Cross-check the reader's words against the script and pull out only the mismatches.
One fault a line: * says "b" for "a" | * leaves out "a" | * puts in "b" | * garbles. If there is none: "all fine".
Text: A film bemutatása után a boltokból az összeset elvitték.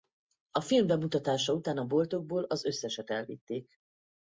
all fine